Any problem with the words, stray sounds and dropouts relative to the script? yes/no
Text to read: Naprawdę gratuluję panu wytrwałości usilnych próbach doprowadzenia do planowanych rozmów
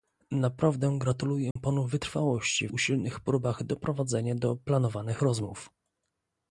yes